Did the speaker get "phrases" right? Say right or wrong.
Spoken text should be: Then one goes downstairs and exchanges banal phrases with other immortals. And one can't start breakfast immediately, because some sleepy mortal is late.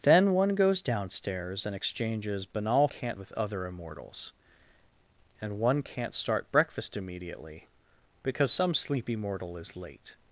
wrong